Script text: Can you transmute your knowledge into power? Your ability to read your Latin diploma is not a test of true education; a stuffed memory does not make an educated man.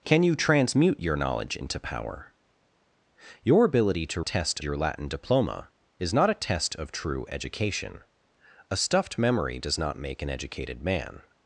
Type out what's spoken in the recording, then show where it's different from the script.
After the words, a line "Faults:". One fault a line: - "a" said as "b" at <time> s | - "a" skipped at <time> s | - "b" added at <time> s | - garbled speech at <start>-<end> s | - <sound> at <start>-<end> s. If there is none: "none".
Can you transmute your knowledge into power? Your ability to test your Latin diploma is not a test of true education; a stuffed memory does not make an educated man.
Faults:
- "read" said as "test" at 4.2 s